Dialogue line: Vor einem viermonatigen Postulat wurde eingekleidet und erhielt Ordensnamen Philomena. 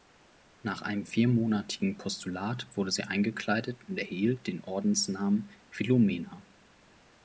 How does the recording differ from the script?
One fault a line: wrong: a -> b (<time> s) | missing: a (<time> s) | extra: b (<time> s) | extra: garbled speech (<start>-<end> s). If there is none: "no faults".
wrong: Vor -> Nach (0.6 s)
extra: sie (2.9 s)
extra: den (4.5 s)